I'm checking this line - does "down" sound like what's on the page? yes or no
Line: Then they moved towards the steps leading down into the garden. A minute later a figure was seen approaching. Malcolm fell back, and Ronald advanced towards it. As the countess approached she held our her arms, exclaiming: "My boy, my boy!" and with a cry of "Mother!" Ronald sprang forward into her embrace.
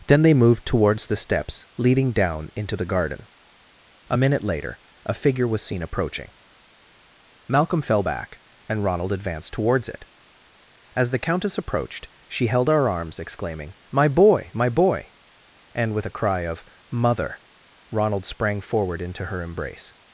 yes